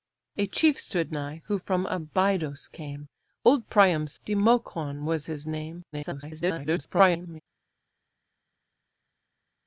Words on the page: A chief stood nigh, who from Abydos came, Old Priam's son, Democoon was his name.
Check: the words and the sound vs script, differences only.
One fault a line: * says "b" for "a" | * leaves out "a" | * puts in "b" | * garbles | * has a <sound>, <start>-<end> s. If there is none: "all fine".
* leaves out "son"
* garbles